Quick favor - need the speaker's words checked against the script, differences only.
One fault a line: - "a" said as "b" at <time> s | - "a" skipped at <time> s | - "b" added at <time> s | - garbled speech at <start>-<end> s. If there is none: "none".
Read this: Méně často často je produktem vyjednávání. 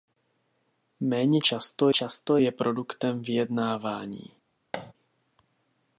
none